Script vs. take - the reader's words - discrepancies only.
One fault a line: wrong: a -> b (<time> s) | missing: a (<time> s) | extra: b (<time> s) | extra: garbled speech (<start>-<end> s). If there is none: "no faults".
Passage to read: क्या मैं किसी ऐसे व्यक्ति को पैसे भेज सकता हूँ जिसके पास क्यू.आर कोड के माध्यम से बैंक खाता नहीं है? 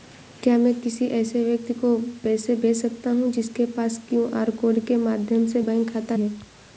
missing: नहीं (6.2 s)